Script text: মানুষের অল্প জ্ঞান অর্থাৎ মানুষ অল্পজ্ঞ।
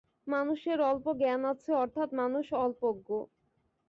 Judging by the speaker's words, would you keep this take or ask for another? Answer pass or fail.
fail